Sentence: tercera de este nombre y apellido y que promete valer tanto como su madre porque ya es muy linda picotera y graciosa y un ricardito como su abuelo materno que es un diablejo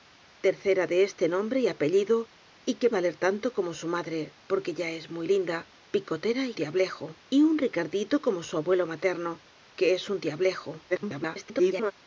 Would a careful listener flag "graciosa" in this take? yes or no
yes